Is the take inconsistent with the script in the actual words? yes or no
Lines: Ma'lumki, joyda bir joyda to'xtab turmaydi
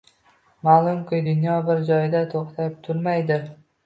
yes